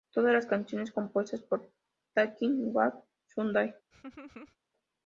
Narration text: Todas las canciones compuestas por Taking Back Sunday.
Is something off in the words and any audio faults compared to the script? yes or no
yes